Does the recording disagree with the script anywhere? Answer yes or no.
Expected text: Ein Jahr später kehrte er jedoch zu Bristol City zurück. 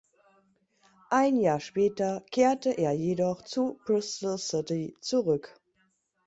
no